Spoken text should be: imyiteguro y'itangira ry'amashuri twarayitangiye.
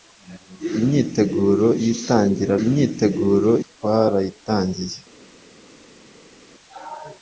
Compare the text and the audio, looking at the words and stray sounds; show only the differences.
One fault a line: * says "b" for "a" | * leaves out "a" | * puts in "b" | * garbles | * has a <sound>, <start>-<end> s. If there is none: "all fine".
* says "imyiteguro" for "ry'amashuri"